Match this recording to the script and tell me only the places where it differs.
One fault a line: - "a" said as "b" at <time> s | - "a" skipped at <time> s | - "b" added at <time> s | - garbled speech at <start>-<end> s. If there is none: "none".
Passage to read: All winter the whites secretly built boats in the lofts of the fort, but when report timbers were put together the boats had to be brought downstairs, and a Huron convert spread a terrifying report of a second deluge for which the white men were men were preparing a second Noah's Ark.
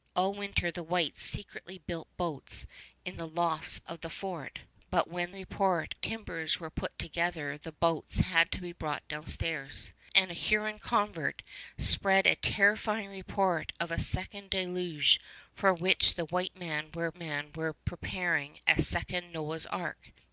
none